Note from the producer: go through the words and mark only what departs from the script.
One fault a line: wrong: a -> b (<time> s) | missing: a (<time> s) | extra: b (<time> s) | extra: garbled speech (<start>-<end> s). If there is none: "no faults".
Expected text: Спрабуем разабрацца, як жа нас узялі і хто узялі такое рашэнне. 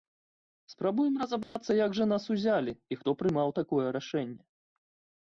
wrong: узялі -> прымаў (3.2 s)